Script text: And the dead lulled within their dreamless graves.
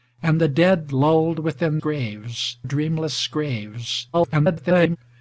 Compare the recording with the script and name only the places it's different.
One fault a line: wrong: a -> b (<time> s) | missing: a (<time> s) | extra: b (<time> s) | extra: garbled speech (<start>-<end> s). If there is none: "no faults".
wrong: their -> graves (1.8 s)
extra: garbled speech (4.1-5.0 s)